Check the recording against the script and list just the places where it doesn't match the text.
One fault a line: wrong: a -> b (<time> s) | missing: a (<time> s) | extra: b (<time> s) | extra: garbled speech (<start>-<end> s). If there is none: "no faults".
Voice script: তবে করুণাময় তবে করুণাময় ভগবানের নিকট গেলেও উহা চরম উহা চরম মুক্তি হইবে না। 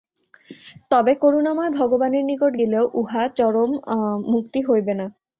missing: তবে করুণাময় (1.7 s)
missing: উহা চরম (3.7 s)